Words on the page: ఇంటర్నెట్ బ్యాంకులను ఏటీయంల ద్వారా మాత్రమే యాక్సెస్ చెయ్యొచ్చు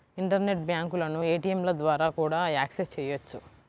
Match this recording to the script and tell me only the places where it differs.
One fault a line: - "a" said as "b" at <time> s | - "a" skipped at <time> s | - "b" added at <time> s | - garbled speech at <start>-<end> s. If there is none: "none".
- "మాత్రమే" said as "కూడా" at 2.2 s